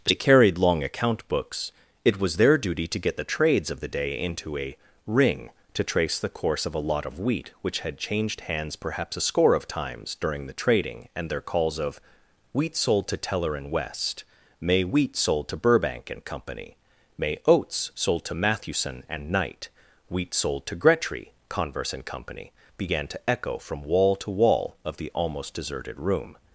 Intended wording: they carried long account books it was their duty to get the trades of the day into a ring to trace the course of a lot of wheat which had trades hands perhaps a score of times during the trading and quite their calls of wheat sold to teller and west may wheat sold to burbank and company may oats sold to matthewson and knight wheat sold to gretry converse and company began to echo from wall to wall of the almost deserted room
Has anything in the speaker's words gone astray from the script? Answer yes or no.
yes